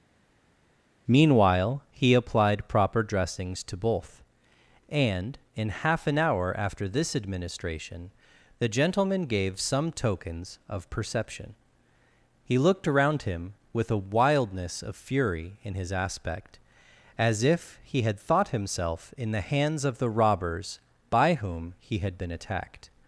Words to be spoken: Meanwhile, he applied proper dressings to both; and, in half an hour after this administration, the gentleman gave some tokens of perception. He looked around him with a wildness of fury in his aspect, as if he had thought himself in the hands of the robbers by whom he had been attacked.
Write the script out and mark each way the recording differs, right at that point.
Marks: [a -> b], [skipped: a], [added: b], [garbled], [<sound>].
Meanwhile, he applied proper dressings to both; and, in half an hour after this administration, the gentleman gave some tokens of perception. He looked around him with a wildness of fury in his aspect, as if he had thought himself in the hands of the robbers by whom he had been attacked.